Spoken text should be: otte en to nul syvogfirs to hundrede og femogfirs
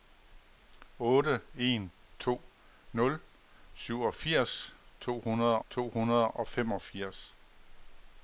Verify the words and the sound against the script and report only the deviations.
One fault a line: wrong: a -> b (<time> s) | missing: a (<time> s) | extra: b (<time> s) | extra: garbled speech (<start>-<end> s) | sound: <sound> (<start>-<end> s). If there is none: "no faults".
extra: to hundrede (5.7 s)